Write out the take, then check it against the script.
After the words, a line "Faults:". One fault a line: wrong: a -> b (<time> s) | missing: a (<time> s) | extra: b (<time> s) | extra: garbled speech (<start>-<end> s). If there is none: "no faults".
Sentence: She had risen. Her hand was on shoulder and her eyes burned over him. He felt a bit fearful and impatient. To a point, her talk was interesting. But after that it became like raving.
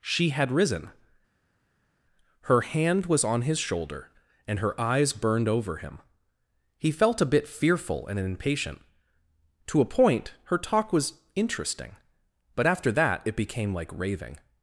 She had risen. Her hand was on his shoulder and her eyes burned over him. He felt a bit fearful and impatient. To a point, her talk was interesting. But after that it became like raving.
Faults:
extra: his (3.4 s)